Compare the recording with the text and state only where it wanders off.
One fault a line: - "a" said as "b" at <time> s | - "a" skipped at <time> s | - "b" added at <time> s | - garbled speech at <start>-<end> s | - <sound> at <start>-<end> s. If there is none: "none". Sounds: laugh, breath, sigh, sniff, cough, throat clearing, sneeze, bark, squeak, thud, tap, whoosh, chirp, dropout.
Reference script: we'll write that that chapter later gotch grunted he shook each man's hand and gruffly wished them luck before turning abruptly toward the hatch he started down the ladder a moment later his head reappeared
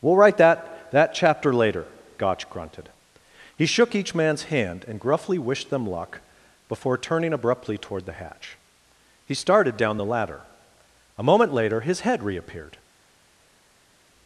none